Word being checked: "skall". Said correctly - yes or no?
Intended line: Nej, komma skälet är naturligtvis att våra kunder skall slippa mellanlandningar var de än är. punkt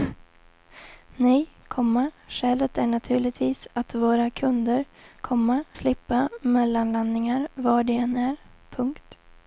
no